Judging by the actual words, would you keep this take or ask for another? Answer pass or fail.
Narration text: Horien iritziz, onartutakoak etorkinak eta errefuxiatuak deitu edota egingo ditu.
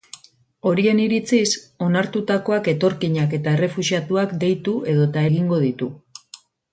pass